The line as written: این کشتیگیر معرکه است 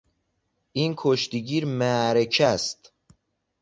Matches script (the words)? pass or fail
pass